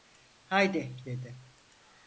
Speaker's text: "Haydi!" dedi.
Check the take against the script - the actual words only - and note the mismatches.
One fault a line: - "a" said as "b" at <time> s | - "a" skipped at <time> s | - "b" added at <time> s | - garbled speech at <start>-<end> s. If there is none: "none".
none